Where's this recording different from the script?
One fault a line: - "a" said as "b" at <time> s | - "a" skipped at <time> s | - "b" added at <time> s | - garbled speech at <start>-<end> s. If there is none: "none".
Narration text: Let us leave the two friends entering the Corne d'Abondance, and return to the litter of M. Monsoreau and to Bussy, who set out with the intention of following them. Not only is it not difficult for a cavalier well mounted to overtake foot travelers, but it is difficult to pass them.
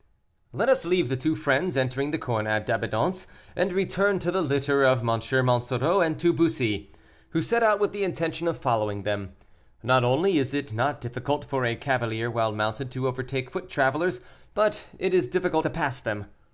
none